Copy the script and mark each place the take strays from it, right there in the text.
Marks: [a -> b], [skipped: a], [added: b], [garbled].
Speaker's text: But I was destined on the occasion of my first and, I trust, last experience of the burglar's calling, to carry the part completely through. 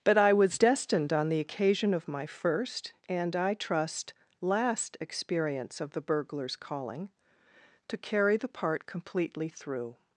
But I was destined on the occasion of my first and, I trust, last experience of the burglar's calling, to carry the part completely through.